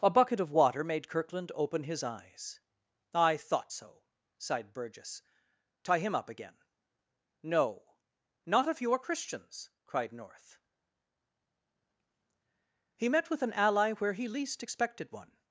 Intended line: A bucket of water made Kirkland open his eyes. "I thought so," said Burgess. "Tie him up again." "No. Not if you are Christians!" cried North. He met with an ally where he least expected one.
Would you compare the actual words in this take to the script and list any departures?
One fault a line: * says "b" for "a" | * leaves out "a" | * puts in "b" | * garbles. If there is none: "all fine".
* says "sighed" for "said"